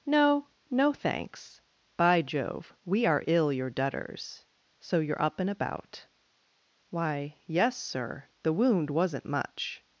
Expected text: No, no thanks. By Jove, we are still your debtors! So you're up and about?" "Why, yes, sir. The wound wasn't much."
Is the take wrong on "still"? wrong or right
wrong